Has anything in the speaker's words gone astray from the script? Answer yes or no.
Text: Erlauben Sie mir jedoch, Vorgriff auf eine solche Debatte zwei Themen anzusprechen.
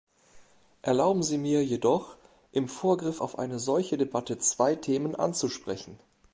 yes